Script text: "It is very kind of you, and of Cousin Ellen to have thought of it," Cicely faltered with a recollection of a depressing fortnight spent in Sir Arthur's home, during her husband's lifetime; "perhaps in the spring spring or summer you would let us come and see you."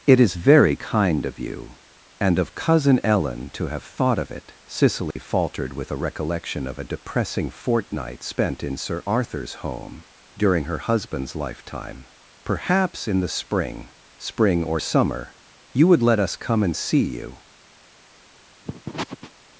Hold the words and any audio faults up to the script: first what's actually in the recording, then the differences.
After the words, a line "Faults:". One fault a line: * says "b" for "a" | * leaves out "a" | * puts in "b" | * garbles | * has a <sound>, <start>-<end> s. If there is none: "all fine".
"It is very kind of you, and of Cousin Ellen to have thought of it," Cicely faltered with a recollection of a depressing fortnight spent in Sir Arthur's home, during her husband's lifetime; "perhaps in the spring spring or summer you would let us come and see you."
Faults:
* has a dropout, 5.1-5.2 s
* has a sniff, 18.6-19.3 s